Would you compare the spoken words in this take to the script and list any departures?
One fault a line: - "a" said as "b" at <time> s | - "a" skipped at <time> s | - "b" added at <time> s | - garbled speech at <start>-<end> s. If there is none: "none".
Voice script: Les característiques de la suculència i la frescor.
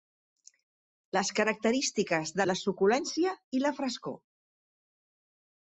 none